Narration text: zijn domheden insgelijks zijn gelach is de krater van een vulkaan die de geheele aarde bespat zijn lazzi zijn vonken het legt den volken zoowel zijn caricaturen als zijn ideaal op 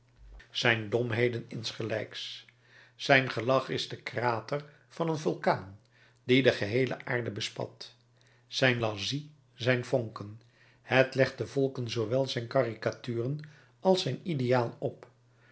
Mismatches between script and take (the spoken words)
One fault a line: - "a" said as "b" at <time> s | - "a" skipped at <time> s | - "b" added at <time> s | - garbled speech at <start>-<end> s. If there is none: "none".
none